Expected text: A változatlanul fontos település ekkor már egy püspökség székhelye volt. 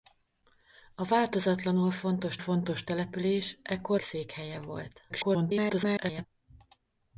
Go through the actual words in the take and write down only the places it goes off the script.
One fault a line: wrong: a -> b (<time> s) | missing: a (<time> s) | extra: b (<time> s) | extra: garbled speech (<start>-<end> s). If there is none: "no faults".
extra: fontos (2.3 s)
missing: már egy püspökség (4.0 s)
extra: garbled speech (5.1-6.3 s)